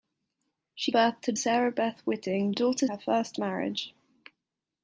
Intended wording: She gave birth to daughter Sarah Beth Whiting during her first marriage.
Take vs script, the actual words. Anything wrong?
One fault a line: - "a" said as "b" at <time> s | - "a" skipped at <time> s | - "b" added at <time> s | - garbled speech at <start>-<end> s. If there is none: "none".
- "gave" skipped at 0.9 s
- "daughter" skipped at 1.3 s
- "during" said as "daughter" at 2.5 s